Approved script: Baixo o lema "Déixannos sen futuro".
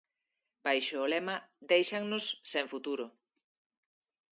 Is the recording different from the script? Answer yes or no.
no